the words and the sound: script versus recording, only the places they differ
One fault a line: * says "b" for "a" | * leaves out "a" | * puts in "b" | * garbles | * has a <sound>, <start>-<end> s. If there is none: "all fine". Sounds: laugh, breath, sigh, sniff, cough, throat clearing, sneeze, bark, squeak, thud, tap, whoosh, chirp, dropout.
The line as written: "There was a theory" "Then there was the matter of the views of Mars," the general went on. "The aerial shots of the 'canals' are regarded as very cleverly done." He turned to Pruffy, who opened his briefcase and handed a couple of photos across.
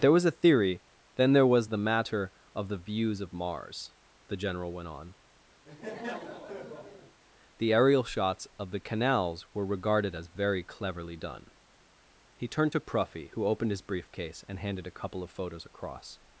* has a laugh, 5.6-7.2 s
* says "were" for "are"